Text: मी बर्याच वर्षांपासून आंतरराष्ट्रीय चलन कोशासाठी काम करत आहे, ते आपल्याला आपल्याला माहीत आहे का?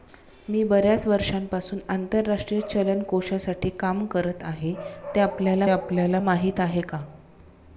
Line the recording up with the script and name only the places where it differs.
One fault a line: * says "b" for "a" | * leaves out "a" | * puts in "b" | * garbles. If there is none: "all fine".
all fine